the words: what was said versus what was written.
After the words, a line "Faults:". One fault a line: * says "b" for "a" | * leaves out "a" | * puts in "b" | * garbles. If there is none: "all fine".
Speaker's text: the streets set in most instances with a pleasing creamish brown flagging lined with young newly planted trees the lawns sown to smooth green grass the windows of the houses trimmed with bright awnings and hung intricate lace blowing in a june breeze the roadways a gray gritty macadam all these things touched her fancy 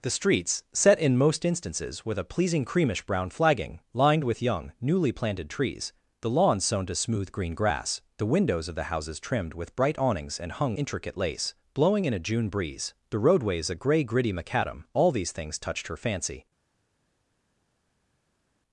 the streets set in most instances with a pleasing creamish brown flagging lined with young newly planted trees the lawns sown to smooth green grass the windows of the houses trimmed with bright awnings and hung intricate lace blowing in a june breeze the roadways a gray gritty macadam all these things touched her fancy
Faults:
all fine